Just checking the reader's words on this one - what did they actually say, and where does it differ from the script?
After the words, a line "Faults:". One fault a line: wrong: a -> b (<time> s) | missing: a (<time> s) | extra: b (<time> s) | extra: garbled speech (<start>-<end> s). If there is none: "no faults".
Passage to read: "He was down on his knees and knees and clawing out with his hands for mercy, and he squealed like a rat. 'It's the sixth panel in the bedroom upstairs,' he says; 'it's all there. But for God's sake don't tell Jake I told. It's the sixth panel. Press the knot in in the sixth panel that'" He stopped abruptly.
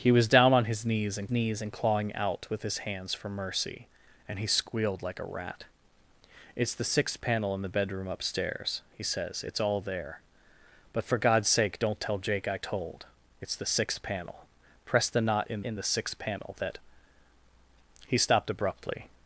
"He was down on his knees and knees and clawing out with his hands for mercy, and he squealed like a rat. 'It's the sixth panel in the bedroom upstairs,' he says; 'it's all there. But for God's sake don't tell Jake I told. It's the sixth panel. Press the knot in in the sixth panel that'" He stopped abruptly.
Faults:
no faults